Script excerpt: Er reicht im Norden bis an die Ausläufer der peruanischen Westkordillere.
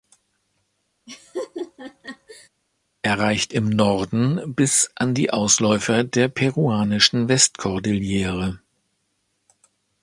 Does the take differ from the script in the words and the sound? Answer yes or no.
yes